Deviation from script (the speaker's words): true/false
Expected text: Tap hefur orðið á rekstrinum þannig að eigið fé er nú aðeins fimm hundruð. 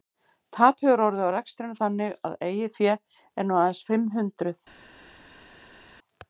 false